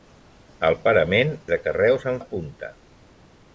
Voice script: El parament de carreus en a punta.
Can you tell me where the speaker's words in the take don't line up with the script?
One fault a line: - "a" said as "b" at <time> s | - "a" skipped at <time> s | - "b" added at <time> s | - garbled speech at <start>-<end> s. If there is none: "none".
none